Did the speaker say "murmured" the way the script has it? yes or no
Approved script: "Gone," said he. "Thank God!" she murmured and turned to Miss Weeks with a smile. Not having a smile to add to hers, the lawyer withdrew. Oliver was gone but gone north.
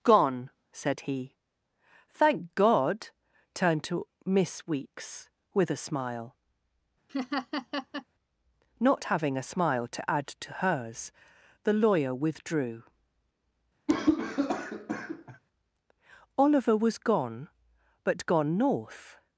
no